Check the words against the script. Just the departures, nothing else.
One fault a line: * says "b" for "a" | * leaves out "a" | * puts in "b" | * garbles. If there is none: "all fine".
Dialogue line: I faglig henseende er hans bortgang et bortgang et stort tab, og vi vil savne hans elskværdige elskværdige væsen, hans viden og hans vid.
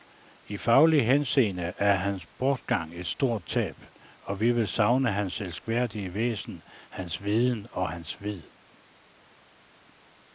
* leaves out "bortgang et"
* leaves out "elskværdige"